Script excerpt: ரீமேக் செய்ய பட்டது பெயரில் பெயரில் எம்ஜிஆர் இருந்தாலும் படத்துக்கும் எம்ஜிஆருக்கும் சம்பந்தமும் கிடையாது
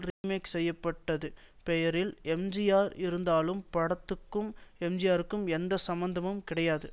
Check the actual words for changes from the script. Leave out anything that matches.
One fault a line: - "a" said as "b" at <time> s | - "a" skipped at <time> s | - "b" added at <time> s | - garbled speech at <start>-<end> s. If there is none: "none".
- "பெயரில்" skipped at 2.1 s
- "எந்த" added at 5.5 s